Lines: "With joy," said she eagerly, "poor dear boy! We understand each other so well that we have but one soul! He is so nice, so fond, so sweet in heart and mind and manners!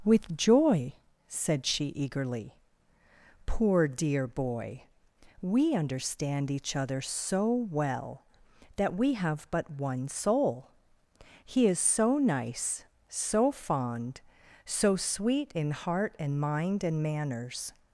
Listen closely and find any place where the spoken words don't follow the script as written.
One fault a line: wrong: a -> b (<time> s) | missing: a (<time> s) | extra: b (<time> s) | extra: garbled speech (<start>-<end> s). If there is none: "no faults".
no faults